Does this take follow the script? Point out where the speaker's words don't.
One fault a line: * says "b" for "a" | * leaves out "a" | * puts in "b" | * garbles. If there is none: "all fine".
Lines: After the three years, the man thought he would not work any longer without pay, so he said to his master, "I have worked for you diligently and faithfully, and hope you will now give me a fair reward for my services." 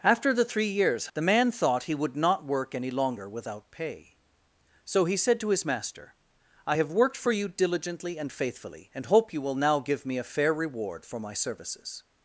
all fine